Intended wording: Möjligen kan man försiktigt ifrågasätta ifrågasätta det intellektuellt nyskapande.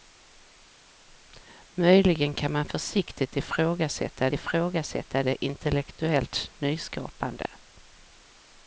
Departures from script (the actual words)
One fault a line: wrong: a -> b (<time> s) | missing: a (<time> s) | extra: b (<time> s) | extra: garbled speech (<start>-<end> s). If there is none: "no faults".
no faults